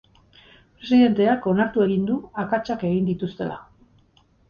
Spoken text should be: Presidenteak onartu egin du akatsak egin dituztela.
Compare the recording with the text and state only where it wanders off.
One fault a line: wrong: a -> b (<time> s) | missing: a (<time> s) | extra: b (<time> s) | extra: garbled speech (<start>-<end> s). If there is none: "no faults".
no faults